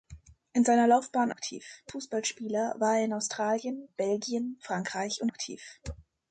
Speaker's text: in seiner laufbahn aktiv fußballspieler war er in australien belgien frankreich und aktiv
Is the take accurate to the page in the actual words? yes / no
yes